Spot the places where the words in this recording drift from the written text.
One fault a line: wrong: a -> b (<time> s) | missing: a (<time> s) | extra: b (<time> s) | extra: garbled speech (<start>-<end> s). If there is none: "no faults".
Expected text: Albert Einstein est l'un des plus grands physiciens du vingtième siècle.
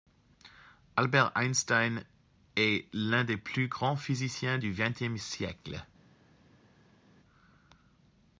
no faults